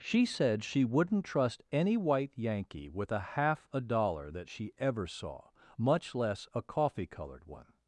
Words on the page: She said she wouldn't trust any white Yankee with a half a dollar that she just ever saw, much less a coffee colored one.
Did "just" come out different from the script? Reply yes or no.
yes